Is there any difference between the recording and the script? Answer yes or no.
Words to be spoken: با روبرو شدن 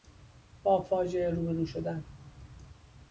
yes